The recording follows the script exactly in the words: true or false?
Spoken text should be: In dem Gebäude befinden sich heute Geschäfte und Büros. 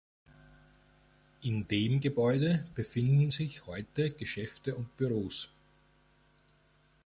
true